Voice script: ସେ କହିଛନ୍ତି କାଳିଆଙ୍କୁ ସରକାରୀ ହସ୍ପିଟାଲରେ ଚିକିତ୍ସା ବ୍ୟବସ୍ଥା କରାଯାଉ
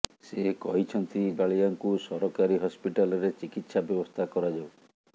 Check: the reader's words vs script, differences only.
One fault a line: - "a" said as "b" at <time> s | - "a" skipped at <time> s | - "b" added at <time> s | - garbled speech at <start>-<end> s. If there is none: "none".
none